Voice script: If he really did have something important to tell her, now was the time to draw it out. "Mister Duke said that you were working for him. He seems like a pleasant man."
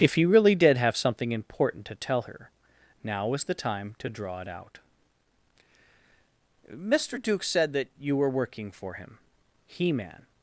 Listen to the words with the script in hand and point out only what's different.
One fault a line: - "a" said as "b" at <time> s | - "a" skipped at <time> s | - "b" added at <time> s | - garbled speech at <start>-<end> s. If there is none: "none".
- "seems like a pleasant" skipped at 9.9 s